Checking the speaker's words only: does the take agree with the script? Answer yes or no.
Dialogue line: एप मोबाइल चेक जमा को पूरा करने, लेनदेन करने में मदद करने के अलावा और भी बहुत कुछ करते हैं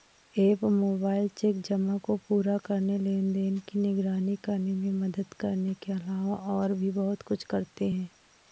no